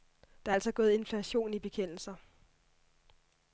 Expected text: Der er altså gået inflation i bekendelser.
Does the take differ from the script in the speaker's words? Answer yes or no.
no